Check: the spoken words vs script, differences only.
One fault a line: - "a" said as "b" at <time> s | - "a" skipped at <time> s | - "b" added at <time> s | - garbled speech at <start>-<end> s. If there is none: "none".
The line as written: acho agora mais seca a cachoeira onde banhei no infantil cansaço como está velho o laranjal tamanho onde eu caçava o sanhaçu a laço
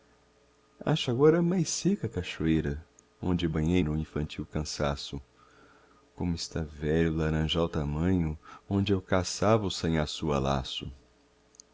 none